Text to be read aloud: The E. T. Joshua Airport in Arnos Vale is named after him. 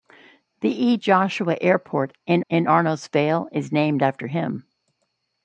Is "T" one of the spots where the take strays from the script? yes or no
yes